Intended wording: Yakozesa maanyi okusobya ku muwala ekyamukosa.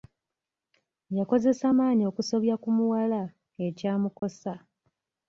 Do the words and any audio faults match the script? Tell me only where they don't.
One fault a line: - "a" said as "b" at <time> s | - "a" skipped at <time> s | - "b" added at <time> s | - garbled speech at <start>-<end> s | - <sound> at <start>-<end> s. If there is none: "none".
- dropout at 4.2-4.2 s